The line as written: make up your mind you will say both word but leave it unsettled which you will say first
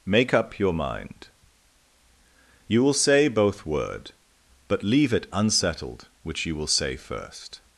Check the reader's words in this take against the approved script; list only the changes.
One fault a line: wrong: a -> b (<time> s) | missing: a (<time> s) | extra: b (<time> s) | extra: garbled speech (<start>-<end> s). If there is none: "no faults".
no faults